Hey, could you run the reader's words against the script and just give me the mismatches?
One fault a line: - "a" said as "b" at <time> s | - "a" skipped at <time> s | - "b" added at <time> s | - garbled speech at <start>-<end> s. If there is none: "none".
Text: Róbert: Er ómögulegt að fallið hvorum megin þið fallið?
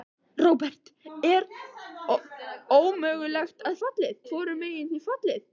none